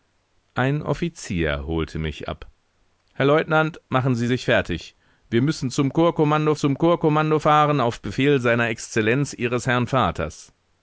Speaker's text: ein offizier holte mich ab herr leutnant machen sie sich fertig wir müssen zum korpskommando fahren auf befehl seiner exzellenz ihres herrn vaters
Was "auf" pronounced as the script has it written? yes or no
yes